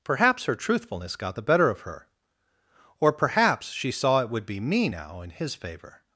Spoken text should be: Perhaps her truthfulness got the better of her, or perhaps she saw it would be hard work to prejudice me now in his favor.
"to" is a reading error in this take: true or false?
true